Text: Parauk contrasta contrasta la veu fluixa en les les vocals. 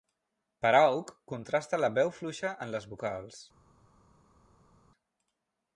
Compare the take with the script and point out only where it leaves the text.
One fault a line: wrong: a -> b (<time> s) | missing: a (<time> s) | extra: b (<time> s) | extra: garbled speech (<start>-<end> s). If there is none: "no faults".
missing: contrasta (1.8 s)
missing: les (2.9 s)